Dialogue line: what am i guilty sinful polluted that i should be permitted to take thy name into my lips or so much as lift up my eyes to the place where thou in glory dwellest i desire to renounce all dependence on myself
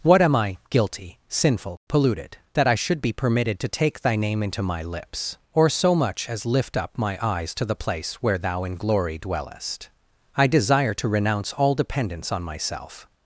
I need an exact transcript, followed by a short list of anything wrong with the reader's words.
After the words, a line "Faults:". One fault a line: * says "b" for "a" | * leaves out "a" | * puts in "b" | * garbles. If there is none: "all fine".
what am i guilty sinful polluted that i should be permitted to take thy name into my lips or so much as lift up my eyes to the place where thou in glory dwellest i desire to renounce all dependence on myself
Faults:
all fine